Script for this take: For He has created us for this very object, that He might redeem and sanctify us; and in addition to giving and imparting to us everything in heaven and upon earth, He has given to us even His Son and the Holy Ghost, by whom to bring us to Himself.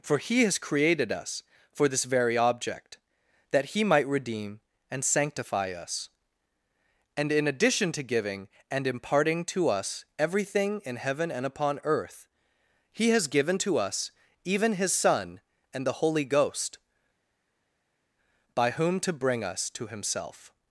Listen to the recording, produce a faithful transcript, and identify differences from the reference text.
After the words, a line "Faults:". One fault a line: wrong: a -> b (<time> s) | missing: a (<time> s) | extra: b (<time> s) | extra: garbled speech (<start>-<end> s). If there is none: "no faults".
For He has created us for this very object, that He might redeem and sanctify us; and in addition to giving and imparting to us everything in heaven and upon earth, He has given to us even His Son and the Holy Ghost, by whom to bring us to Himself.
Faults:
no faults